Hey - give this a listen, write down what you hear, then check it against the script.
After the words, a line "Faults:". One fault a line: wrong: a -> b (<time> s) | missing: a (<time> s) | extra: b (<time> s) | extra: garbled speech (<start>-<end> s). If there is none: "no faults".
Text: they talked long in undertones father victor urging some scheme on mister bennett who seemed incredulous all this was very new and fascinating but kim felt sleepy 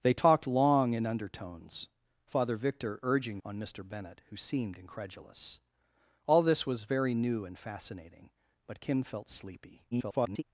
they talked long in undertones father victor urging on mister bennett who seemed incredulous all this was very new and fascinating but kim felt sleepy [garbled]
Faults:
missing: some scheme (3.4 s)
extra: garbled speech (9.9-10.4 s)